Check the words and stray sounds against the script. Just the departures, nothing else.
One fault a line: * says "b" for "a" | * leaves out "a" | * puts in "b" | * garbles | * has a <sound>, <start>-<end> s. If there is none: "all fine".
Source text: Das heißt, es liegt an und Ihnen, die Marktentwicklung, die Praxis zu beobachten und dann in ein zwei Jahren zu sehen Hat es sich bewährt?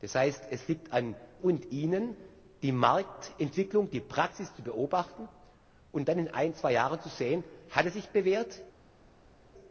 all fine